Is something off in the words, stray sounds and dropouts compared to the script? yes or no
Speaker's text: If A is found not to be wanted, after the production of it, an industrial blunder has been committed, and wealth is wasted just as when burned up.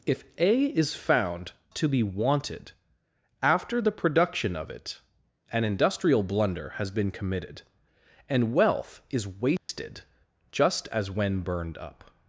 yes